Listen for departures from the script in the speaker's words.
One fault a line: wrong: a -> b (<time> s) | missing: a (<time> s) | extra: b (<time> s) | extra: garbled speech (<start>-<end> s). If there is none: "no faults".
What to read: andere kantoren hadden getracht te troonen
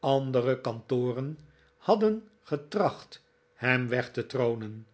extra: hem weg (3.5 s)